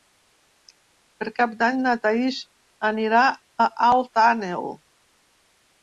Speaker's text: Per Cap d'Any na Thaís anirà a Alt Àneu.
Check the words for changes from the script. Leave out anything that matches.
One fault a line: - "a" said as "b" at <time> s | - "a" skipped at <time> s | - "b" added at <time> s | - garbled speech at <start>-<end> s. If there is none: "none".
none